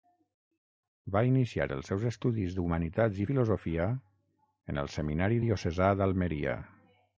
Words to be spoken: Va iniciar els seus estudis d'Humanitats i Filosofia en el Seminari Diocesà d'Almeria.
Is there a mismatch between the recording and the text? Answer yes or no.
no